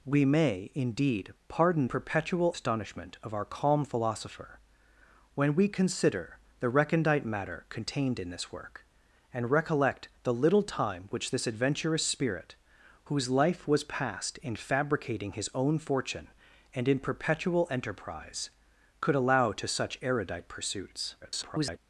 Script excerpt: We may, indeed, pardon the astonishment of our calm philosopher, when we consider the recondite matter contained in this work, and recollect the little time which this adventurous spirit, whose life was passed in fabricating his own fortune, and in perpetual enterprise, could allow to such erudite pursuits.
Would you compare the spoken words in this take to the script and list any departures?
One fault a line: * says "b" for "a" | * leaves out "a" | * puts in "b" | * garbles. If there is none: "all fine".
* says "perpetual" for "the"
* garbles